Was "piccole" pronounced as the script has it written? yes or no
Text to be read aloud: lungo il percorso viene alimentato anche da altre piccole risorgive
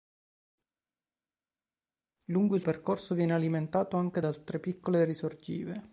yes